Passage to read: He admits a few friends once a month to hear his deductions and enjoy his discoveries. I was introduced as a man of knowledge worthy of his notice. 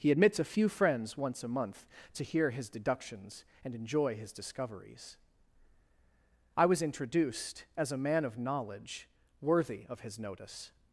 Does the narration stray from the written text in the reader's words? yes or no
no